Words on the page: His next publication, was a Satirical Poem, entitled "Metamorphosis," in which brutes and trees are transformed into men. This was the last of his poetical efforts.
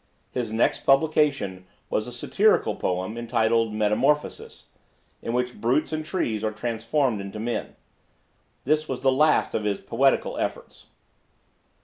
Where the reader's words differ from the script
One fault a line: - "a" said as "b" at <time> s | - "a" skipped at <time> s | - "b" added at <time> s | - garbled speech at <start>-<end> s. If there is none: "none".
none